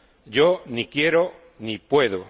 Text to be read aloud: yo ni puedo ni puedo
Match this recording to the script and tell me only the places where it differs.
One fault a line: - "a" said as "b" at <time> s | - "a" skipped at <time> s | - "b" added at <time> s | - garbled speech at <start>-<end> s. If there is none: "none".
- "puedo" said as "quiero" at 0.9 s